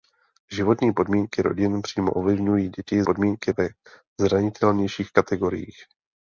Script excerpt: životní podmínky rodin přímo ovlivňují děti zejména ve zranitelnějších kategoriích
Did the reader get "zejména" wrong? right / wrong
wrong